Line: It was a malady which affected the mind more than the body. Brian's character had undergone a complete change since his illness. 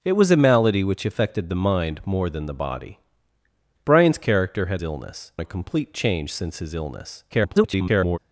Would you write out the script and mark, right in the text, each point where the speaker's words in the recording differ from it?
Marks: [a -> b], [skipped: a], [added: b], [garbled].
It was a malady which affected the mind more than the body. Brian's character had [undergone -> illness] a complete change since his illness. [garbled]